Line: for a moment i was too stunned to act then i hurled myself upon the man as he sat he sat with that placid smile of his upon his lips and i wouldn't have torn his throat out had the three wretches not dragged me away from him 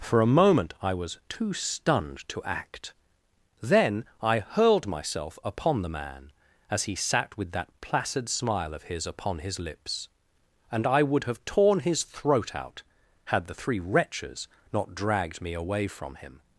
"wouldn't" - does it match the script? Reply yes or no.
no